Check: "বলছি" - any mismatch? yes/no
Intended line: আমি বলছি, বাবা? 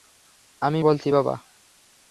no